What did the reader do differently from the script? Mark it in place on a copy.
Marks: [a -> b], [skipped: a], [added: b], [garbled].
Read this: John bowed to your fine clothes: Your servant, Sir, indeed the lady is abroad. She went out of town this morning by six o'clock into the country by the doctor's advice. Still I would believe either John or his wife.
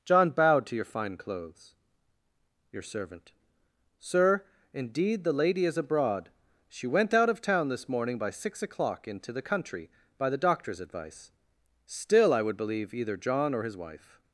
John bowed to your fine clothes: Your servant, Sir, indeed the lady is abroad. She went out of town this morning by six o'clock into the country by the doctor's advice. Still I would believe either John or his wife.